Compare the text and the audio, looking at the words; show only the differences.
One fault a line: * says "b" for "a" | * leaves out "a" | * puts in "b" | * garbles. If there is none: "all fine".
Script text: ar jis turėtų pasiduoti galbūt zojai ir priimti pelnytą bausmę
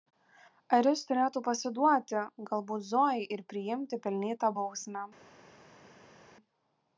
all fine